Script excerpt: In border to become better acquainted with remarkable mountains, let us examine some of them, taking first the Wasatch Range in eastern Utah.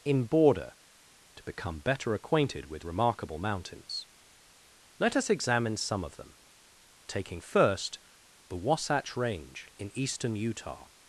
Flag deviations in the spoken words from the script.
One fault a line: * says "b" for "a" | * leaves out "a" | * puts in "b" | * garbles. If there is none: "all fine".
all fine